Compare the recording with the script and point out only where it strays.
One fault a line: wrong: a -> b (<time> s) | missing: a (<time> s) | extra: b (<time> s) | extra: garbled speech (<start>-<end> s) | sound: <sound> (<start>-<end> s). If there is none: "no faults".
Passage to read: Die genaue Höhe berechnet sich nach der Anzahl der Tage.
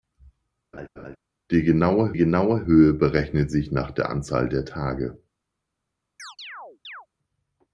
sound: laugh (0.7-1.2 s)
extra: genaue (2.1 s)
sound: chirp (6.2-7.1 s)